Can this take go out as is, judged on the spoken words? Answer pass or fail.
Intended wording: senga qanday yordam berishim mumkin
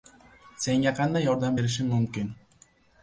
pass